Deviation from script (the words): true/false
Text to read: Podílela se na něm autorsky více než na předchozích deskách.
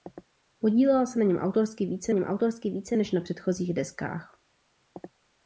true